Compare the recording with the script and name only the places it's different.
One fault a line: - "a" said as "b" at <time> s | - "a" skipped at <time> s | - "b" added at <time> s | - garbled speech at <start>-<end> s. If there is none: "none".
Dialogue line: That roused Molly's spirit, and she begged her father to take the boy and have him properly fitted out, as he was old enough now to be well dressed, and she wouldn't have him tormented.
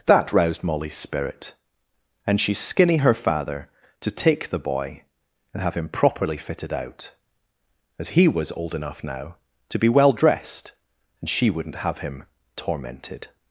- "begged" said as "skinny" at 2.5 s